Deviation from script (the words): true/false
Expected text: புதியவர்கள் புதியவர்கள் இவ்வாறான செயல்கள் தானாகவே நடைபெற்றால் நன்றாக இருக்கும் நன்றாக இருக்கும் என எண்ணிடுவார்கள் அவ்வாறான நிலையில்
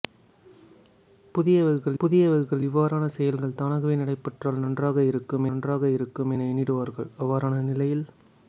false